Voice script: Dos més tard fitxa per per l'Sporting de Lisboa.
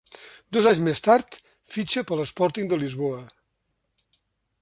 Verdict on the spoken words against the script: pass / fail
fail